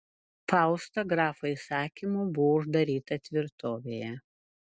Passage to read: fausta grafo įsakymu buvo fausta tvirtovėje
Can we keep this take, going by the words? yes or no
no